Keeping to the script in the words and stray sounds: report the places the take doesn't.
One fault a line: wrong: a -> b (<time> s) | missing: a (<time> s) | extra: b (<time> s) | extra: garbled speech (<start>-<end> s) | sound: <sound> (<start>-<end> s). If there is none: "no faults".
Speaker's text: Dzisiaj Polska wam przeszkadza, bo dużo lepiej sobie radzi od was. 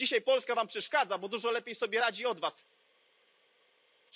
no faults